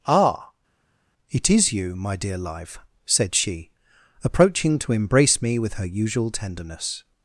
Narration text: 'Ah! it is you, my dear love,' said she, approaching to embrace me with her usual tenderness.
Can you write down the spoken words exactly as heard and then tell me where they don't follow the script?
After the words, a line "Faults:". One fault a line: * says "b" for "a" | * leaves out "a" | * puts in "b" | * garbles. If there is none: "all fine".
'Ah! it is you, my dear live,' said she, approaching to embrace me with her usual tenderness.
Faults:
* says "live" for "love"